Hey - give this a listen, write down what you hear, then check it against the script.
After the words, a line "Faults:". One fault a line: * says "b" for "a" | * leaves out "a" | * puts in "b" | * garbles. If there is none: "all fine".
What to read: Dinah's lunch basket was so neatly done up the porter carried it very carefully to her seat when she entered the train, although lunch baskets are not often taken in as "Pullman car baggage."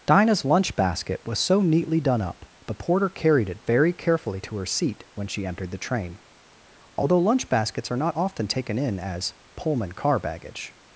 Dinah's lunch basket was so neatly done up the porter carried it very carefully to her seat when she entered the train, although lunch baskets are not often taken in as "Pullman car baggage."
Faults:
all fine